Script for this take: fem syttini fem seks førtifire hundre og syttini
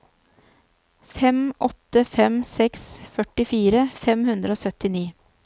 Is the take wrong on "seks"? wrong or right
right